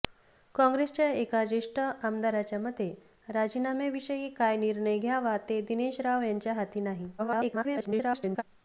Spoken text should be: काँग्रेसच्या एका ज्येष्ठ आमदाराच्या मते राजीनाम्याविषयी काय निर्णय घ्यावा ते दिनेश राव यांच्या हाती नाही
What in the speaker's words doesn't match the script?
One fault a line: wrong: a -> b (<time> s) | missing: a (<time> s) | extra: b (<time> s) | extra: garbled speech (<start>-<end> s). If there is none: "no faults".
extra: garbled speech (7.2-8.4 s)